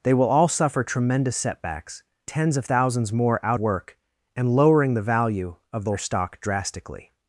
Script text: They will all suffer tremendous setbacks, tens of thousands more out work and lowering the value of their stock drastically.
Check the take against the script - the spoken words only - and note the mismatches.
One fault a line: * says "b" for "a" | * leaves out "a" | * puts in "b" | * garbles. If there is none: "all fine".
all fine